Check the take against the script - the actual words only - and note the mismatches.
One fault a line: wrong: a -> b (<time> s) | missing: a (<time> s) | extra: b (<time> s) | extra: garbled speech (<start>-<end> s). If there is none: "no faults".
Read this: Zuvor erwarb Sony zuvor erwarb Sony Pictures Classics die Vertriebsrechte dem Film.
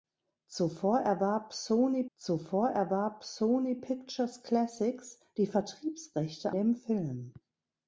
no faults